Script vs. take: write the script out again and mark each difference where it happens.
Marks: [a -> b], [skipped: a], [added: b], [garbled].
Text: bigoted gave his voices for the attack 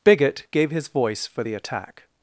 [bigoted -> bigot] gave his [voices -> voice] for the attack